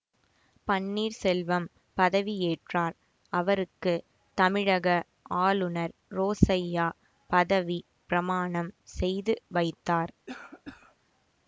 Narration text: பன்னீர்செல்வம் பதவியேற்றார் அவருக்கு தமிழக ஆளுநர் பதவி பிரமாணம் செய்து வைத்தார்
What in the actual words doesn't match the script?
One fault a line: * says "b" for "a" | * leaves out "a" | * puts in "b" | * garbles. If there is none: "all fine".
* puts in "ரோசய்யா"